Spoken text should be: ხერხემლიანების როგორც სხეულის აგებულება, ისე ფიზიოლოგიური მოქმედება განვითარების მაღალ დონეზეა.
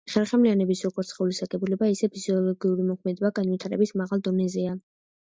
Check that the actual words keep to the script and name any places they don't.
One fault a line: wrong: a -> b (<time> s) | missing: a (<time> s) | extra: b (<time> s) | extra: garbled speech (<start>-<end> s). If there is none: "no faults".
no faults